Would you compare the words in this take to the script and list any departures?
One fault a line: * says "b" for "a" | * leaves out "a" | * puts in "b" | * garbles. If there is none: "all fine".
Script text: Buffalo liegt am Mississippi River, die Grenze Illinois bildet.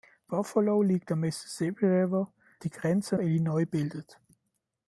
all fine